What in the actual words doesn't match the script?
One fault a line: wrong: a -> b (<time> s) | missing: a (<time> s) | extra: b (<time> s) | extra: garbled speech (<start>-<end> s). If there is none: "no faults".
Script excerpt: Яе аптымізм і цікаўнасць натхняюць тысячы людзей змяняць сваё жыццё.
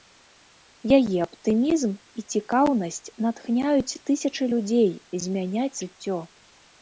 missing: сваё (5.7 s)